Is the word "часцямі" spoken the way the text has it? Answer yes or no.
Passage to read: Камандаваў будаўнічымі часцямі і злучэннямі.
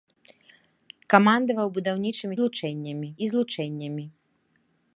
no